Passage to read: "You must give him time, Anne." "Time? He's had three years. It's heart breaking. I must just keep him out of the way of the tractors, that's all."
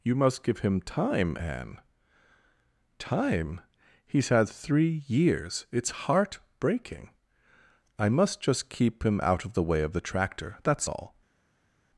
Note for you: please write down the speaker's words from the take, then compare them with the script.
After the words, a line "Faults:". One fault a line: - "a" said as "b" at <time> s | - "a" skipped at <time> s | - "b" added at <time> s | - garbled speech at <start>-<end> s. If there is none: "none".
"You must give him time, Anne." "Time? He's had three years. It's heart breaking. I must just keep him out of the way of the tractor, that's all."
Faults:
- "tractors" said as "tractor" at 10.0 s